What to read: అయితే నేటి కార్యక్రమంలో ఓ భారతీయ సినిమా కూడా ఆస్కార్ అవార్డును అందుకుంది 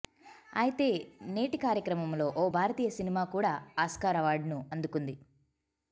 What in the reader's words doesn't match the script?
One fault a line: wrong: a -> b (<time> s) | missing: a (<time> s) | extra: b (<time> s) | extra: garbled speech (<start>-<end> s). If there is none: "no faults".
no faults